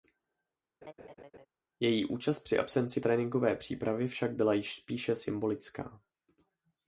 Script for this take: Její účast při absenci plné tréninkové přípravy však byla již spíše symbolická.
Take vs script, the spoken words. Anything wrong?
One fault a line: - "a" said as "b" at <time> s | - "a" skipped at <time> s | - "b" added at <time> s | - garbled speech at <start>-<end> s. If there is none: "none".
- "plné" skipped at 3.0 s